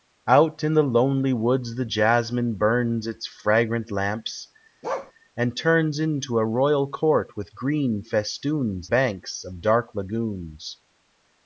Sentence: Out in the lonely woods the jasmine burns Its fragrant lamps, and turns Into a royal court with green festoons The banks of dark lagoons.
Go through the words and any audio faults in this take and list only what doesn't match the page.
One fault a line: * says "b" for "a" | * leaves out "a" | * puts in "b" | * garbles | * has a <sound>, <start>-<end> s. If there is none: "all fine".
* has a bark, 4.8-5.1 s
* leaves out "The"